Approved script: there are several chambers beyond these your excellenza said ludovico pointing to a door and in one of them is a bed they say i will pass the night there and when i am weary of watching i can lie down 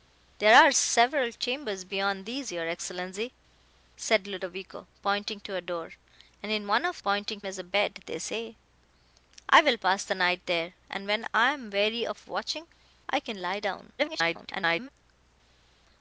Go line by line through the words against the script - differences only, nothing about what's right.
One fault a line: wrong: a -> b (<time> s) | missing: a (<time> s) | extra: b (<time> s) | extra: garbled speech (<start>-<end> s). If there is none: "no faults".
wrong: them -> pointing (7.0 s)
extra: garbled speech (14.0-14.9 s)